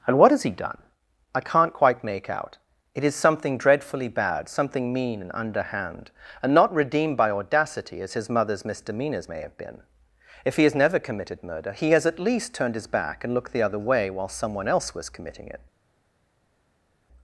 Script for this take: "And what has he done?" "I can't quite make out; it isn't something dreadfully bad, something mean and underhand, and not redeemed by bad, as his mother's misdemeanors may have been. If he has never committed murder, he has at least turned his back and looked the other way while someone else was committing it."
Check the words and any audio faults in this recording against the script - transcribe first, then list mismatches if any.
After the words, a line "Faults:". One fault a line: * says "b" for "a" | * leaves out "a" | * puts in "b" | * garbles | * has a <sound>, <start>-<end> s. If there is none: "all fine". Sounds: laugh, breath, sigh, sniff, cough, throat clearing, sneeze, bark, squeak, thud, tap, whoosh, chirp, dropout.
"And what has he done?" "I can't quite make out; it is something dreadfully bad, something mean and underhand, and not redeemed by audacity, as his mother's misdemeanors may have been. If he has never committed murder, he has at least turned his back and looked the other way while someone else was committing it."
Faults:
* says "is" for "isn't"
* says "audacity" for "bad"